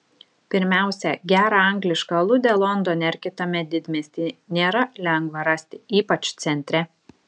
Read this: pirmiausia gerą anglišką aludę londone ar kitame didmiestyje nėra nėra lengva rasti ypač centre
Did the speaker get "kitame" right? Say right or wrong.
right